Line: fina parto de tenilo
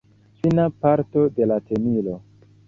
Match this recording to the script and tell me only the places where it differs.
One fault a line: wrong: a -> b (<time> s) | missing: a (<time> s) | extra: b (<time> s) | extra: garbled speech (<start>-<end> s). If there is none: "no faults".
extra: la (1.4 s)